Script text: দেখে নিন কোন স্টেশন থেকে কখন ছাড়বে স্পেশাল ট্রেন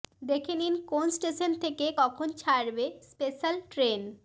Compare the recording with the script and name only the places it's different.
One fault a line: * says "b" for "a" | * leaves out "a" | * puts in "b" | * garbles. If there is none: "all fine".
all fine